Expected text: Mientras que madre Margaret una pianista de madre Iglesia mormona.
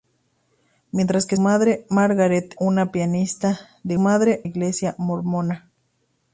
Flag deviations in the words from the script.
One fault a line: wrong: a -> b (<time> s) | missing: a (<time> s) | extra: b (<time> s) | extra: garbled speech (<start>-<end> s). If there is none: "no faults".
no faults